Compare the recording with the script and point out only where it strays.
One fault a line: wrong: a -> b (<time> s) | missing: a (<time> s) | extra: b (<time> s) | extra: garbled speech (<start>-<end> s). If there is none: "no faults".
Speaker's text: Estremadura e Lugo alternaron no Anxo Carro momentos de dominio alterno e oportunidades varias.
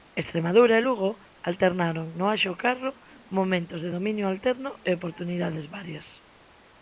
no faults